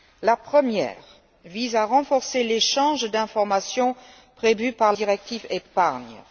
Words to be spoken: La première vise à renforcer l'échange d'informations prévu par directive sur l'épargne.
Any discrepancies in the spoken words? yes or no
no